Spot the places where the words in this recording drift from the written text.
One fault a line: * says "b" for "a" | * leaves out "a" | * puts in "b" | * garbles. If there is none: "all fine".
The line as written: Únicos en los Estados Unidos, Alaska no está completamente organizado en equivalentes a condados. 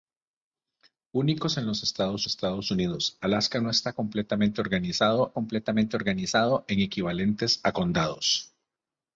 * puts in "Estados"
* puts in "completamente organizado"